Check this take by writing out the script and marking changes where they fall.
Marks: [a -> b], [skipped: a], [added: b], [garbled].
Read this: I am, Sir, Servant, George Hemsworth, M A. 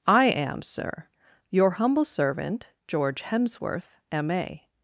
I am, Sir, [added: Your humble] Servant, George Hemsworth, M A.